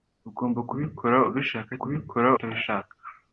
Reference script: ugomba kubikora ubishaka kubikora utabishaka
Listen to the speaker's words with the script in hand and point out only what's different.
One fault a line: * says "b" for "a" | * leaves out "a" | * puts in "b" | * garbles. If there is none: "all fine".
all fine